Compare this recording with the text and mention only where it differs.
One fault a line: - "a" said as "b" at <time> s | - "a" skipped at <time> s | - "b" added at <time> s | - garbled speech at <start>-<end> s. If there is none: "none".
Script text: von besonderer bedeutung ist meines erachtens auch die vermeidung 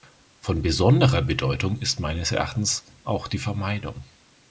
none